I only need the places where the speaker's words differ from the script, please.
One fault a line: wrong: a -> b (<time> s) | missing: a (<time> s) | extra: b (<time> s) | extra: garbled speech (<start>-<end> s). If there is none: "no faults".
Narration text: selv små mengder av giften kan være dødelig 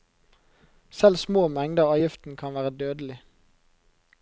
no faults